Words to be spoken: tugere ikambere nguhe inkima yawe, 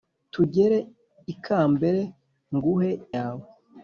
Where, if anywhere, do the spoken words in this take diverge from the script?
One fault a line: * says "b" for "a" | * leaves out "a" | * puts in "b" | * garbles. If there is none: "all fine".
* leaves out "inkima"